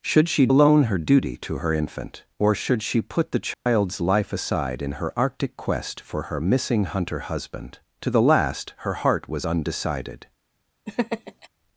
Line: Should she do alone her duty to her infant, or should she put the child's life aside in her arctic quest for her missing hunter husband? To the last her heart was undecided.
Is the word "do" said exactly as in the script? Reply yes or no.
no